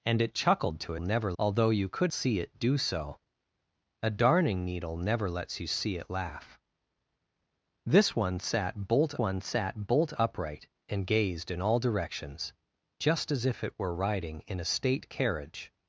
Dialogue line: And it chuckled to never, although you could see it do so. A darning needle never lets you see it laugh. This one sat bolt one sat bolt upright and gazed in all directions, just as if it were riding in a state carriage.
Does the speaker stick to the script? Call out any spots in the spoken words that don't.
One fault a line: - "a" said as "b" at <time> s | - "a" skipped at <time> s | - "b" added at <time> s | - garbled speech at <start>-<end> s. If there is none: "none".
none